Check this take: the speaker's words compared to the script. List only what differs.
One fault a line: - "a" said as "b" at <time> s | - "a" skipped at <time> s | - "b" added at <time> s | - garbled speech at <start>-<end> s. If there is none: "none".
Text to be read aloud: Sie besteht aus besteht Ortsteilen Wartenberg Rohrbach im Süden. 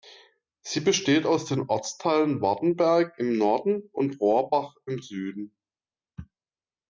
- "besteht" said as "den" at 1.4 s
- "im Norden und" added at 3.2 s